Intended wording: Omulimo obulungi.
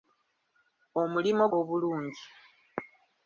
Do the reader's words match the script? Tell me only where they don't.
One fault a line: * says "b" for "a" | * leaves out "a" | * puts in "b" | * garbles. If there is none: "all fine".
all fine